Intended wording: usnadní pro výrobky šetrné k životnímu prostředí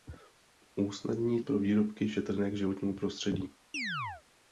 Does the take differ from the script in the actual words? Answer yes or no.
no